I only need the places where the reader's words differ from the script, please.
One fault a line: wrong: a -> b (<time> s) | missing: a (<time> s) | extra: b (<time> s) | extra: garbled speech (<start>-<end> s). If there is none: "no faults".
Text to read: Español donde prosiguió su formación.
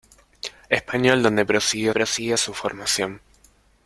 extra: prosiguió (1.9 s)